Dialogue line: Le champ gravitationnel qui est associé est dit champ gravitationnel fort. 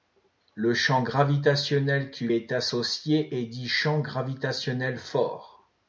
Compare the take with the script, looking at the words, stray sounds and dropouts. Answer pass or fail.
pass